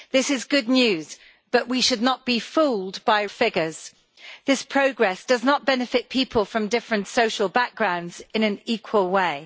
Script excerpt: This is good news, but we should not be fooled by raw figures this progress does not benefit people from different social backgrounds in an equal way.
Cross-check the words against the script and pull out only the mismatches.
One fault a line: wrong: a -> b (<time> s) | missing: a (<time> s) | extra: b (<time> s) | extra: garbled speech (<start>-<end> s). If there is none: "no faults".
missing: raw (3.2 s)